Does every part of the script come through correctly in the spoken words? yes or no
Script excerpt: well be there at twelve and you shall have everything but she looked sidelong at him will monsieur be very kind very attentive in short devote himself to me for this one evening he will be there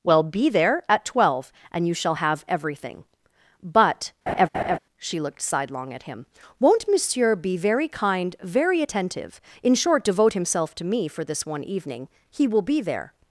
no